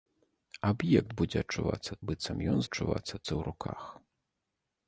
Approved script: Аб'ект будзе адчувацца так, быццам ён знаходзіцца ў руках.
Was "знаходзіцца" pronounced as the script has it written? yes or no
no